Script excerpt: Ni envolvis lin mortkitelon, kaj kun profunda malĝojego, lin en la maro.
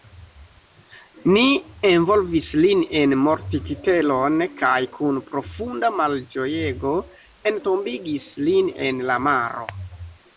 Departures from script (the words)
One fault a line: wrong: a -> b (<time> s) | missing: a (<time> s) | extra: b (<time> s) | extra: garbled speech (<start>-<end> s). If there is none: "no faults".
extra: en (3.0 s)
extra: entombigis (7.5 s)